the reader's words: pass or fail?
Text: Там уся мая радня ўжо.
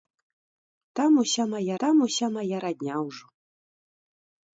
fail